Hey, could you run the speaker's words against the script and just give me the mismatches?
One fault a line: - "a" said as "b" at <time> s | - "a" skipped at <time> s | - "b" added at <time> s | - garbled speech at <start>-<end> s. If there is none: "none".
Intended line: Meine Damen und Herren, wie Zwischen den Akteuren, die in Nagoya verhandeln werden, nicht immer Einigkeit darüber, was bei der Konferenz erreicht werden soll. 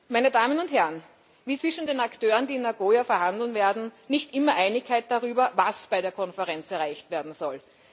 none